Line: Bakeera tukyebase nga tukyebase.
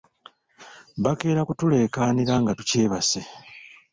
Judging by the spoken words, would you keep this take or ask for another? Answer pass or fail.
fail